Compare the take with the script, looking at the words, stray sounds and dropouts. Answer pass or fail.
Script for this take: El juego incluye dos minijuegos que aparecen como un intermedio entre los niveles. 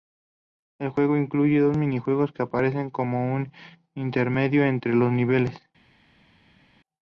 pass